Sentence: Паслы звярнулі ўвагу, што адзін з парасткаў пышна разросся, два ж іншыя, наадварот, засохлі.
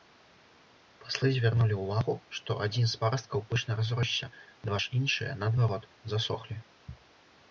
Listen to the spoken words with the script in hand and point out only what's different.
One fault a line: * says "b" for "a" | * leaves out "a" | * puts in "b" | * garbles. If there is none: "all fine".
all fine